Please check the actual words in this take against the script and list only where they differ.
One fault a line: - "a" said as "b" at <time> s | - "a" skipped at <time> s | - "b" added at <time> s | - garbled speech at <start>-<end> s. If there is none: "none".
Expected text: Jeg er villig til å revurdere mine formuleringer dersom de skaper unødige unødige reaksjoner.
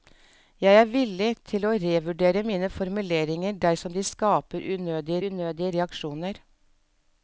none